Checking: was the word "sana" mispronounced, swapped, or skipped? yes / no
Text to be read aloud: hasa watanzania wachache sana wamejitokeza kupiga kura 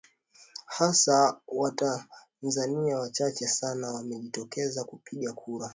no